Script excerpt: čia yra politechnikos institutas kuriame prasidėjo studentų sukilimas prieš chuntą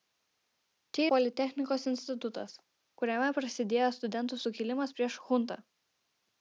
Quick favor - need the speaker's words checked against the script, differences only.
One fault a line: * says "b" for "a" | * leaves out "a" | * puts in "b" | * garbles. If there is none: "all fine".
* leaves out "yra"